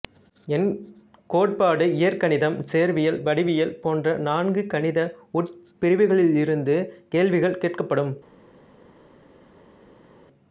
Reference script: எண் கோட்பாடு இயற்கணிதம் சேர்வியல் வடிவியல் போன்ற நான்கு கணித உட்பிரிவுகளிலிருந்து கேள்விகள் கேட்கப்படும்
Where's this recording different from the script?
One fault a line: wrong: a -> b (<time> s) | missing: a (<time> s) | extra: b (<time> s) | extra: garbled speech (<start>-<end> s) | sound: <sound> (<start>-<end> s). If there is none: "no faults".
no faults